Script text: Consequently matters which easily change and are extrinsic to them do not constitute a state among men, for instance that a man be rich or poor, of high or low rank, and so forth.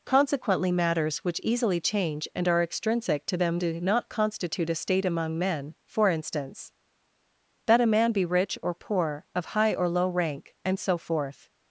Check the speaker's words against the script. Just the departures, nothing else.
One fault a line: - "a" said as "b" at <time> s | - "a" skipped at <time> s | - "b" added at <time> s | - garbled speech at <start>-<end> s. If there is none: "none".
none